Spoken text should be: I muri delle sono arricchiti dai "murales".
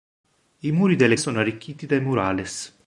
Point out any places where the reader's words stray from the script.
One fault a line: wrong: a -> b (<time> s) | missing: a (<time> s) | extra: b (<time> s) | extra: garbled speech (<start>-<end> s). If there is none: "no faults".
no faults